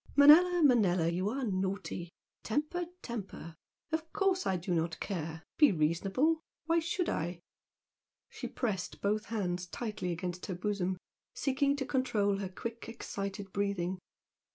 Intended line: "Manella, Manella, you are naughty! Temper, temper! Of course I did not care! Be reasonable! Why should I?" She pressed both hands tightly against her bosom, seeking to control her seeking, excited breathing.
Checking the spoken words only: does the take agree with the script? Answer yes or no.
no